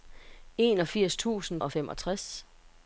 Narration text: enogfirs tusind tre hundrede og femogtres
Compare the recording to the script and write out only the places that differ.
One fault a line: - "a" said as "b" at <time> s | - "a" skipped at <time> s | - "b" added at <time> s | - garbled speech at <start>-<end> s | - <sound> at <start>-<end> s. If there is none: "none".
- "tre hundrede" skipped at 1.6 s